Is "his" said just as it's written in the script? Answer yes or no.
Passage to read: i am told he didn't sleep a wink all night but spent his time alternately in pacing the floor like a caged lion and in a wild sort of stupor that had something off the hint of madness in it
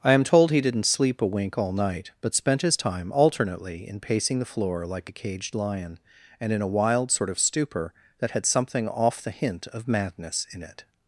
yes